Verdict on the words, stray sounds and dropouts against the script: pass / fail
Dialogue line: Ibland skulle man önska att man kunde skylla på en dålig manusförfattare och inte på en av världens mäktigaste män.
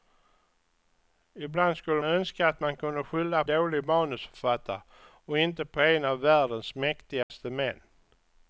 fail